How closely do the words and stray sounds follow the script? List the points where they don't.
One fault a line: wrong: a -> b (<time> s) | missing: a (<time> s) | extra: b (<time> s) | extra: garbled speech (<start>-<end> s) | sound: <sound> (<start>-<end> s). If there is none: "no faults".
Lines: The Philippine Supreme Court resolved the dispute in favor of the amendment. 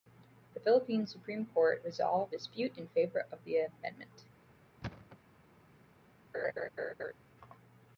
missing: the (2.3 s)
sound: thud (4.8-5.2 s)
sound: laugh (6.3-7.1 s)